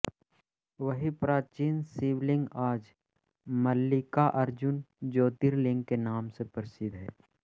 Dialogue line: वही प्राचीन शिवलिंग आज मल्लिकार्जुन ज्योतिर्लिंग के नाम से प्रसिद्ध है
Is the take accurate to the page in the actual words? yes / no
yes